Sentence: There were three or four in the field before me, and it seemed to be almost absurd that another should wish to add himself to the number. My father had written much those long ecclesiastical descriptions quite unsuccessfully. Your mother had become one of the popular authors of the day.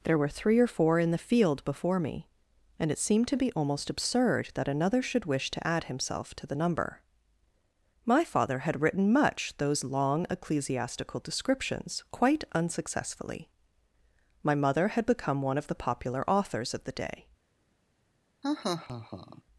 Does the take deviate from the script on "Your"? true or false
true